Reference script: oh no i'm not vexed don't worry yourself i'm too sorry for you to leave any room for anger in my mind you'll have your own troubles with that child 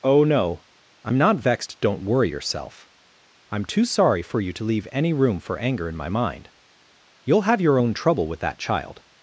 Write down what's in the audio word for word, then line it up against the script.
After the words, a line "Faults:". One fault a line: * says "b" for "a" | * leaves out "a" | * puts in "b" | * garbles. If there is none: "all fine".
oh no i'm not vexed don't worry yourself i'm too sorry for you to leave any room for anger in my mind you'll have your own trouble with that child
Faults:
* says "trouble" for "troubles"